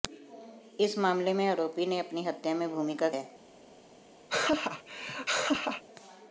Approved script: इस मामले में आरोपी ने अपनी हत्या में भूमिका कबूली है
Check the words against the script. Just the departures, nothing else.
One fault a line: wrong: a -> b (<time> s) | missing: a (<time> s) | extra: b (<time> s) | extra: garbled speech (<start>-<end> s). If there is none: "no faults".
missing: कबूली (3.1 s)